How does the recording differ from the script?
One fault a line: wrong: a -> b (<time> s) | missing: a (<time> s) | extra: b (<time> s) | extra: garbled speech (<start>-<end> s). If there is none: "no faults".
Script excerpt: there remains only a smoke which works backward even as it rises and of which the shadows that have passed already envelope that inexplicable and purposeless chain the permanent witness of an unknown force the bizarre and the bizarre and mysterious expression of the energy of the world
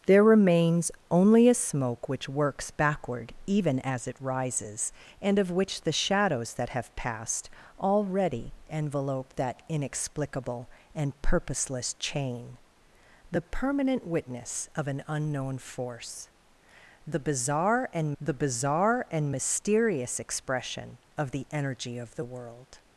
no faults